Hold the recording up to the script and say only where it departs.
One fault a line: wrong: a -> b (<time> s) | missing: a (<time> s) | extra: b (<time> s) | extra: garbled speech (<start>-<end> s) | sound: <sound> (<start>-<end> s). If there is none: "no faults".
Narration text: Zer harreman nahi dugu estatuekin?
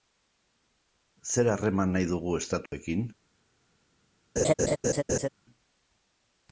sound: dropout (2.7-2.7 s)
sound: laugh (4.4-5.3 s)